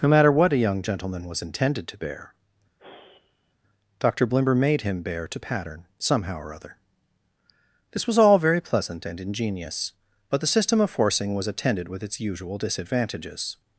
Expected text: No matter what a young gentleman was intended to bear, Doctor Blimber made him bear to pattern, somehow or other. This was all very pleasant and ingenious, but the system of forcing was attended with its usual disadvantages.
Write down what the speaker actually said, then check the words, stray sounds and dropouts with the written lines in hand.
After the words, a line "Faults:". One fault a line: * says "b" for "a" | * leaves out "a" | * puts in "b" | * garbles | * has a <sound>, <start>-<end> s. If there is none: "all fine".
No matter what a young gentleman was intended to bear, Doctor Blimber made him bear to pattern, somehow or other. This was all very pleasant and ingenious, but the system of forcing was attended with its usual disadvantages.
Faults:
* has a sigh, 2.8-3.5 s